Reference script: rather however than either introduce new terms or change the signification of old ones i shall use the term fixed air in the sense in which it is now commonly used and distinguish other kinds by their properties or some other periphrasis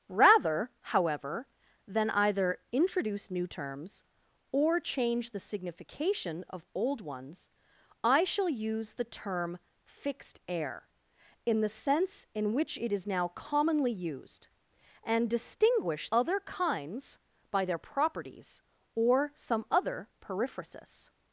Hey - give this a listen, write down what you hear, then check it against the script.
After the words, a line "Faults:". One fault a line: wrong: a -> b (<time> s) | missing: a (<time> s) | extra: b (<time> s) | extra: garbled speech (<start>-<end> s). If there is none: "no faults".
rather however than either introduce new terms or change the signification of old ones i shall use the term fixed air in the sense in which it is now commonly used and distinguish other kinds by their properties or some other periphrasis
Faults:
no faults